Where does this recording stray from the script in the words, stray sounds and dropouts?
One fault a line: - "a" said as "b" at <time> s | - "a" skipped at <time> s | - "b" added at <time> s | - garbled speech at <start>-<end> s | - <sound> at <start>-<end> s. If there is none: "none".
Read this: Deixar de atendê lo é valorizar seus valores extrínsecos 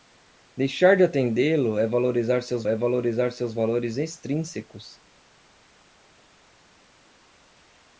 - "é valorizar seus" added at 2.7 s